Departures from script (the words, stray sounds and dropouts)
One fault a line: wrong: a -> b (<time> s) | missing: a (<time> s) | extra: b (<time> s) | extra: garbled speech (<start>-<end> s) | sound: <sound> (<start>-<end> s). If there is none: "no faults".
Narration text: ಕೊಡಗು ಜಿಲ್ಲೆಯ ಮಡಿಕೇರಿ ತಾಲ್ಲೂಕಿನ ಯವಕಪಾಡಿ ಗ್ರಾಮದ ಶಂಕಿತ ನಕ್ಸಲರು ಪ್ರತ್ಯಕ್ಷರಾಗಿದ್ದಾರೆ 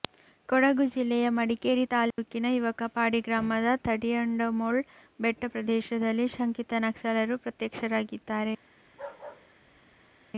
sound: dropout (2.1-2.2 s)
extra: ತಡಿಯಂಡಮೋಳ್ ಬೆಟ್ಟ ಪ್ರದೇಶದಲ್ಲಿ (3.9 s)
sound: bark (8.8-10.2 s)